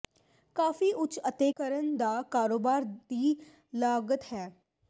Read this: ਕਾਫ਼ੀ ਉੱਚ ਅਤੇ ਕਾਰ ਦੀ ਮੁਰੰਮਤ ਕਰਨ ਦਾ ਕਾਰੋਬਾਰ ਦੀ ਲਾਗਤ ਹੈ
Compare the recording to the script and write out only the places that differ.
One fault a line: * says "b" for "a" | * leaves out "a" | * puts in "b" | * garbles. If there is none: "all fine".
* leaves out "ਕਾਰ ਦੀ ਮੁਰੰਮਤ"